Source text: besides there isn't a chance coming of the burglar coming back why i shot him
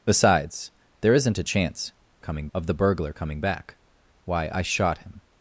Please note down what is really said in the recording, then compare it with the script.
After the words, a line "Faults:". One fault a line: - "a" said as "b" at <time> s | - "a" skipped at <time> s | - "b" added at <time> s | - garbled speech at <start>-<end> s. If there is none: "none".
besides there isn't a chance coming of the burglar coming back why i shot him
Faults:
none